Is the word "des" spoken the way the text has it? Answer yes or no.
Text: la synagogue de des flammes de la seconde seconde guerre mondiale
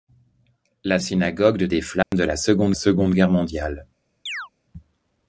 yes